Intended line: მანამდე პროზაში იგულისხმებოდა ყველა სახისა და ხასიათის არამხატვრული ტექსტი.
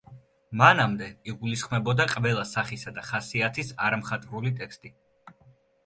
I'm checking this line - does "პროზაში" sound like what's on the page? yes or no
no